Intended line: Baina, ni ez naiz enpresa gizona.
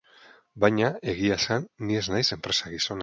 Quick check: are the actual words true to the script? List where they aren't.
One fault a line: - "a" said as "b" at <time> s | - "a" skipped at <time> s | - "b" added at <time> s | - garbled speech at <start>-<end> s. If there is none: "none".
- "egia esan" added at 1.1 s